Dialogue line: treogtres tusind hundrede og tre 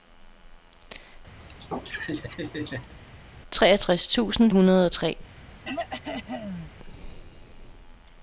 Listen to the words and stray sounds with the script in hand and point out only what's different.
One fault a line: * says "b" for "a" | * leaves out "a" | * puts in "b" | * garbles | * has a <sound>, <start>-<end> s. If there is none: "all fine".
* has a laugh, 1.4-2.9 s
* has a throat clearing, 5.6-6.7 s